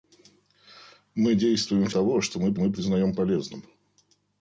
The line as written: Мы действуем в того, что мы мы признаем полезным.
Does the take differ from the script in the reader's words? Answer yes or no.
no